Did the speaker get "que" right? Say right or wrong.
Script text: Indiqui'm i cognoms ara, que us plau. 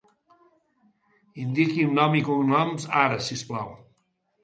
wrong